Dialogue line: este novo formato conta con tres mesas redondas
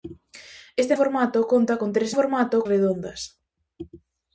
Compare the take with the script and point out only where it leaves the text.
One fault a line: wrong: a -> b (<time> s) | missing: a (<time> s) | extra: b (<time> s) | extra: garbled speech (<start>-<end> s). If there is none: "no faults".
missing: novo (0.9 s)
wrong: mesas -> formato (2.2 s)